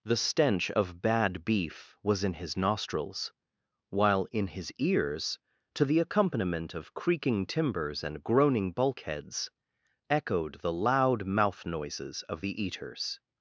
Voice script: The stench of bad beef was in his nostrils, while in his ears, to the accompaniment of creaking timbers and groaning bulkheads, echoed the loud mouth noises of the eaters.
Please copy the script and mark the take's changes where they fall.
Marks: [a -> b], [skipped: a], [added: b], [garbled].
The stench of bad beef was in his nostrils, while in his ears, to the accompaniment of creaking timbers and groaning bulkheads, echoed the loud mouth noises of the eaters.